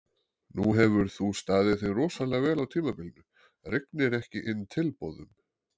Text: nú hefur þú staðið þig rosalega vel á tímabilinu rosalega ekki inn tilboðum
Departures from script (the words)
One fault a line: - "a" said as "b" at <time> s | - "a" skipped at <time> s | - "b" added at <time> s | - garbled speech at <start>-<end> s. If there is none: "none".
- "rosalega" said as "rignir" at 3.7 s